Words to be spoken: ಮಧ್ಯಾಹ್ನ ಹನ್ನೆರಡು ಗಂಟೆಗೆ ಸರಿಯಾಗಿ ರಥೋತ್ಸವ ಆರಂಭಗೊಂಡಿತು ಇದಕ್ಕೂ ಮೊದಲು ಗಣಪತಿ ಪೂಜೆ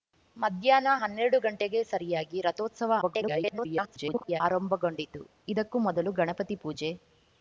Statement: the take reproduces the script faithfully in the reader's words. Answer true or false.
false